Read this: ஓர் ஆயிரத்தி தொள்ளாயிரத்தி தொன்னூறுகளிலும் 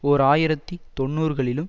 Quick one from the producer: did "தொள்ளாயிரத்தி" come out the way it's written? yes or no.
no